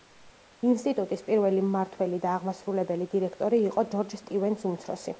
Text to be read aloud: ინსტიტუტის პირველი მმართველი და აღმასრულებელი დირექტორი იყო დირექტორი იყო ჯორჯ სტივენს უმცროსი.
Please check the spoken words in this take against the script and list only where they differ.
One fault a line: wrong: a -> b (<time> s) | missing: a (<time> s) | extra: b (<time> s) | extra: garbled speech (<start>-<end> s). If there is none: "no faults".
missing: დირექტორი იყო (3.9 s)